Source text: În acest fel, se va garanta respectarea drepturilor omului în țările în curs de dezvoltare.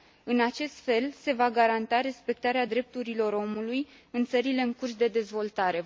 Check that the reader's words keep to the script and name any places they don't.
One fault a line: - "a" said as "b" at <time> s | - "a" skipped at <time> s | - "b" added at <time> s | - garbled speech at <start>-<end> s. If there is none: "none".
none